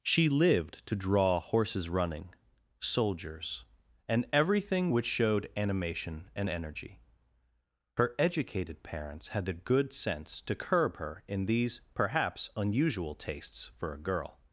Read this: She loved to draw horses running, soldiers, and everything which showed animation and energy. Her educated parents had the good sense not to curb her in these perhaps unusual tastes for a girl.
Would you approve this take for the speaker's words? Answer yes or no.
no